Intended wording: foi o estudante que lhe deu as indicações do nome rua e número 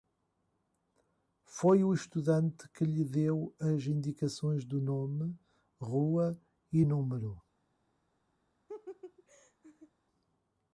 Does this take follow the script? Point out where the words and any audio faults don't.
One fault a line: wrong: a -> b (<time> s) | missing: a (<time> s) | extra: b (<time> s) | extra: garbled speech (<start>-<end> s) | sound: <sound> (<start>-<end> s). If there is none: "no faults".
sound: laugh (8.7-9.9 s)